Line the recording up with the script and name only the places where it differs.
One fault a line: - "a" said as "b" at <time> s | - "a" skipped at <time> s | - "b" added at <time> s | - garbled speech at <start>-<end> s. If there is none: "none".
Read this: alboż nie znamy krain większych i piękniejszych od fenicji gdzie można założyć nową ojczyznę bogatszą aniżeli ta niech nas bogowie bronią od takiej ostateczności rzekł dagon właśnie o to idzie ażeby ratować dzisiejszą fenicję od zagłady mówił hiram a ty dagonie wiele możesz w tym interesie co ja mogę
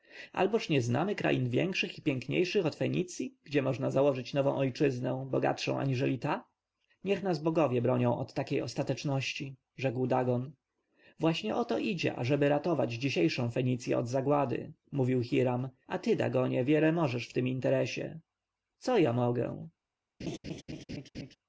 none